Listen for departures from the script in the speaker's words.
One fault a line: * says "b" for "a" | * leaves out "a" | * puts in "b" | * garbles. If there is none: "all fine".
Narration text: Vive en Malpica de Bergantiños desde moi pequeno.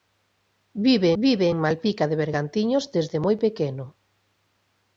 * puts in "vive"